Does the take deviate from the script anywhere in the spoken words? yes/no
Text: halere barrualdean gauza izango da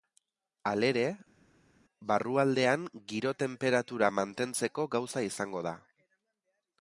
yes